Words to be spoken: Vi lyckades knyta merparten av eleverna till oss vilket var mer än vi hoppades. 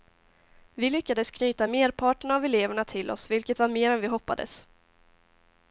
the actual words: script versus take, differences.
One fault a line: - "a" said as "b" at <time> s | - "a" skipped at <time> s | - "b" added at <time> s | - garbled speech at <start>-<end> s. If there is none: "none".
none